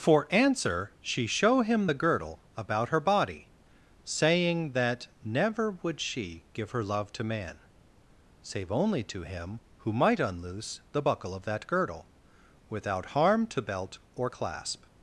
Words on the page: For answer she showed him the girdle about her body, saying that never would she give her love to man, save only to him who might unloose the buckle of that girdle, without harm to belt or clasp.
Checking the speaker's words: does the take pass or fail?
fail